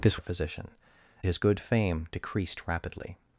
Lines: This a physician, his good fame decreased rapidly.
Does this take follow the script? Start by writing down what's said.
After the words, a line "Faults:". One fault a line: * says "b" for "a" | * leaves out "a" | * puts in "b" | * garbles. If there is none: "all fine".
This a physician, his good fame decreased rapidly.
Faults:
all fine